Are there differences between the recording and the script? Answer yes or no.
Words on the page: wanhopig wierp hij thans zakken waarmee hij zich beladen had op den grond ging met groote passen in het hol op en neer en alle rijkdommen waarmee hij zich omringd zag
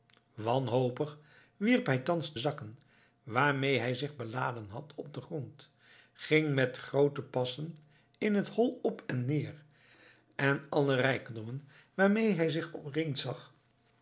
no